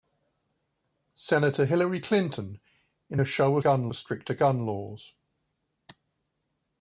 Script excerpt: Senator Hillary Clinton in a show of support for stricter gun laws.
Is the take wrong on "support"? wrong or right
wrong